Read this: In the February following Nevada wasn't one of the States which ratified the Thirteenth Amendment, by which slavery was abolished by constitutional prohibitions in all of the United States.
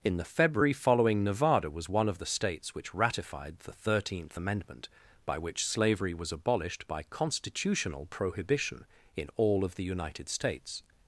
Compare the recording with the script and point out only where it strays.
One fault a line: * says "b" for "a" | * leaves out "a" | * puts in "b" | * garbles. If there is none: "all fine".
* says "was" for "wasn't"
* says "prohibition" for "prohibitions"